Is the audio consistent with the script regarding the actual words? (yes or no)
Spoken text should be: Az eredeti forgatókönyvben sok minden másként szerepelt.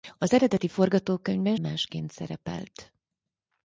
no